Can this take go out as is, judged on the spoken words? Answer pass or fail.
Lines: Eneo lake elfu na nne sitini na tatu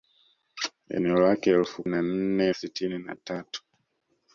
pass